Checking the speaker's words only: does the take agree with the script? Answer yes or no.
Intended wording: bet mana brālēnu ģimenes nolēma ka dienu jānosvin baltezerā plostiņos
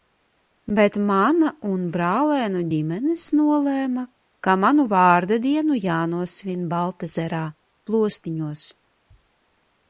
no